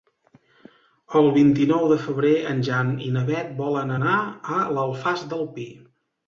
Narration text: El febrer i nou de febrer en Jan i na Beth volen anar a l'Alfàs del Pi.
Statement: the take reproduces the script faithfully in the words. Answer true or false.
false